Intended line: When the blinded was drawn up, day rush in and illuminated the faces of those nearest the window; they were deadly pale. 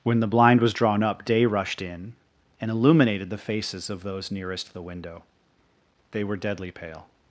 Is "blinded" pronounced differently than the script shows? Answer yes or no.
yes